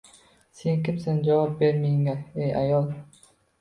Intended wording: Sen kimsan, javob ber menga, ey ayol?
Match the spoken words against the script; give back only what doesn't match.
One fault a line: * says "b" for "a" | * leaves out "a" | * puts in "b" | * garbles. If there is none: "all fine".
all fine